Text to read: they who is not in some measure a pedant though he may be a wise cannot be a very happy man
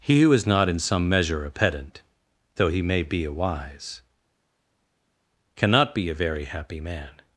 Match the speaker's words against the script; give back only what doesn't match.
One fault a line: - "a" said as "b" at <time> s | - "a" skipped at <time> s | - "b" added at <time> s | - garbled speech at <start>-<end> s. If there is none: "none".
- "they" said as "he" at 0.0 s